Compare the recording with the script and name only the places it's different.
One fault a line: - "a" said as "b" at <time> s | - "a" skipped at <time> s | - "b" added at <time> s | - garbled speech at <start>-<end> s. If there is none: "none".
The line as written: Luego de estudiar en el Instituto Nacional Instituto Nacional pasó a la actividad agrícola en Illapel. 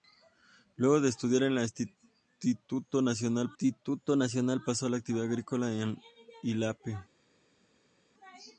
none